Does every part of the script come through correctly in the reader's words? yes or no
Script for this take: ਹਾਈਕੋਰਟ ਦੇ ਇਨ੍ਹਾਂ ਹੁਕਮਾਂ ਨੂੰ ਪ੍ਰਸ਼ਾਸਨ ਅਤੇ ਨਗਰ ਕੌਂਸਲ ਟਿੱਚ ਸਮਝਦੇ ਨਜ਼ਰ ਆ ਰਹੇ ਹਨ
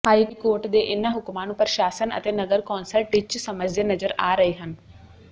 yes